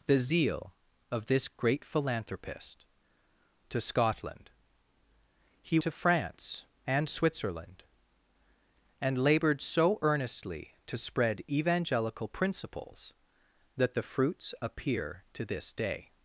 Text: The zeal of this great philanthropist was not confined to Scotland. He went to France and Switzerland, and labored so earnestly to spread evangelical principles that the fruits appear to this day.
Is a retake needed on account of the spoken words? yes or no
yes